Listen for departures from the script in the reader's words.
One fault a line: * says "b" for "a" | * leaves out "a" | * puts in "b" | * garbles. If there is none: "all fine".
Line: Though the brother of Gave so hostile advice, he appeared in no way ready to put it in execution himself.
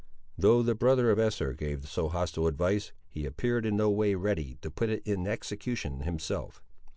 * puts in "Esther"